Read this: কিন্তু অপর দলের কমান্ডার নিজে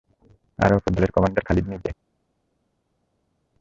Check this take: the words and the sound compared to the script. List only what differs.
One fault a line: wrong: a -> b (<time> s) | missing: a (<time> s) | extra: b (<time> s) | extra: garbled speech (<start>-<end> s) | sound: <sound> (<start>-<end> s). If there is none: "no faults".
wrong: কিন্তু -> আর (0.6 s)
extra: খালিদ (1.5 s)